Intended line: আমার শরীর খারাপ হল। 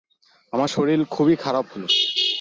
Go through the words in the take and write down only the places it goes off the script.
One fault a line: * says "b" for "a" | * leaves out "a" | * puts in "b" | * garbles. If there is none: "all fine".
* puts in "খুবই"